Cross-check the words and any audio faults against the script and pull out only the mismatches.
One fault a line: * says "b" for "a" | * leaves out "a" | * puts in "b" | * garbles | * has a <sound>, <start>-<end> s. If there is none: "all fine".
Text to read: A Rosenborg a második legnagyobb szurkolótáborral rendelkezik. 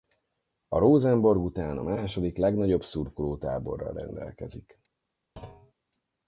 * puts in "után"
* has a thud, 5.4-5.7 s